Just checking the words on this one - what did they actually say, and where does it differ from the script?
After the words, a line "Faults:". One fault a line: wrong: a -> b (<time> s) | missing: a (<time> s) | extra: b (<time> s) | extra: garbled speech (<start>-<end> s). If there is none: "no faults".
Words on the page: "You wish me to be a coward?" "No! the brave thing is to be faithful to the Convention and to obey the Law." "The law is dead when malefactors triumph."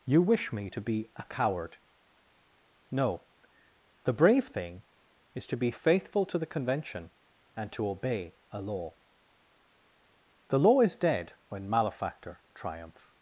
"You wish me to be a coward?" "No! the brave thing is to be faithful to the Convention and to obey a Law." "The law is dead when malefactor triumph."
Faults:
wrong: the -> a (8.5 s)
wrong: malefactors -> malefactor (11.7 s)